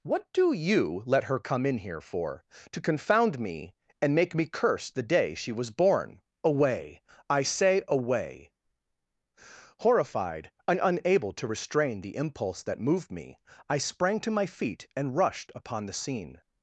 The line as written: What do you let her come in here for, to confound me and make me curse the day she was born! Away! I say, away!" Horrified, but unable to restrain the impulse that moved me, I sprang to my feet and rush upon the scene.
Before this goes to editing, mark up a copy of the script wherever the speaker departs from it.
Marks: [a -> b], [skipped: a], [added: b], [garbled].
What do you let her come in here for, to confound me and make me curse the day she was born! Away! I say, away!" Horrified, [but -> and] unable to restrain the impulse that moved me, I sprang to my feet and [rush -> rushed] upon the scene.